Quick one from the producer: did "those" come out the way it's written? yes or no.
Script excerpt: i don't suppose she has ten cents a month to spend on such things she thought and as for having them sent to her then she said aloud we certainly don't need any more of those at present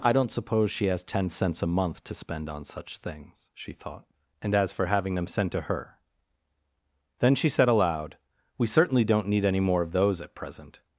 yes